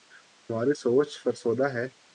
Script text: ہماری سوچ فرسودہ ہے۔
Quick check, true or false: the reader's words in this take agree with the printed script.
true